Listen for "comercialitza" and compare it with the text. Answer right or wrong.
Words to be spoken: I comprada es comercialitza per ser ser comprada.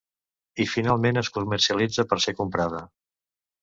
right